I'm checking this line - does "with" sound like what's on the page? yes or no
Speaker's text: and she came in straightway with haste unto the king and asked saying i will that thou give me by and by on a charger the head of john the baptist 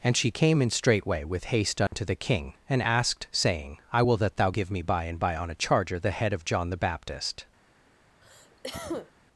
yes